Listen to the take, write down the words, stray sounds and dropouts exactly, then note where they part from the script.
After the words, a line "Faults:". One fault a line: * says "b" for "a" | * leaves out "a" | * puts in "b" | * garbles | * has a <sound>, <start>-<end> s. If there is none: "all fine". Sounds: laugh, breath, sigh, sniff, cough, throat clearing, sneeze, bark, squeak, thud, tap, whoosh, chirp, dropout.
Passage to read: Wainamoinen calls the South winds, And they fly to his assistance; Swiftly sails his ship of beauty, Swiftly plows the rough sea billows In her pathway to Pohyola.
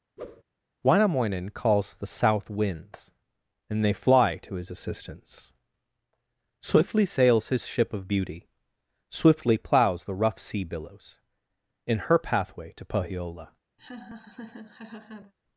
Wainamoinen calls the South winds, And they fly to his assistance; Swiftly sails his ship of beauty, Swiftly plows the rough sea billows In her pathway to Pohyola.
Faults:
* has a whoosh, 0.2-0.4 s
* has a laugh, 13.8-15.3 s